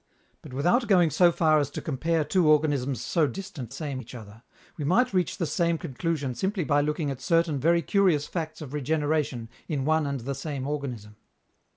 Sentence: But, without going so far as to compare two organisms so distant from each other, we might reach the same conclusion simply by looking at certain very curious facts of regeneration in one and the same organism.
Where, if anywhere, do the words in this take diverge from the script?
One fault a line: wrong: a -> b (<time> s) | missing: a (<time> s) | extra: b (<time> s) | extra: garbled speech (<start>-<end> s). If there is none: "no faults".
wrong: from -> same (3.7 s)